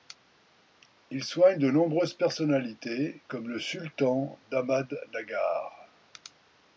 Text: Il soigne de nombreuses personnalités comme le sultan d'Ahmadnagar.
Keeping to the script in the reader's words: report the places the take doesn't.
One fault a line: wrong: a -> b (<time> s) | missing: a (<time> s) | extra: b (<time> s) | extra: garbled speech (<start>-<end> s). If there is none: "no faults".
no faults